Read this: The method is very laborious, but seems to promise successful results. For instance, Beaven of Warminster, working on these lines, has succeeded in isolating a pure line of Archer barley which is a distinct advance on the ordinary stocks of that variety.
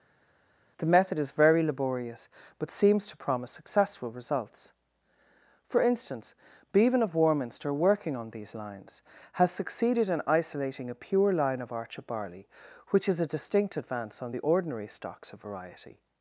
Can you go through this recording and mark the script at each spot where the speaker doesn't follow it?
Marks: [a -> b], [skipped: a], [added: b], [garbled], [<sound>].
The method is very laborious, but seems to promise successful results. For instance, Beaven of Warminster, working on these lines, has succeeded in isolating a pure line of Archer barley which is a distinct advance on the ordinary stocks of [skipped: that] variety.